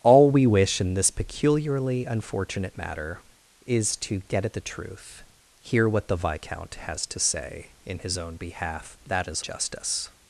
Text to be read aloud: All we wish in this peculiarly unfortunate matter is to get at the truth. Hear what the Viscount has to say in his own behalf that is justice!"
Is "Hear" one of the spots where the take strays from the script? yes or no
no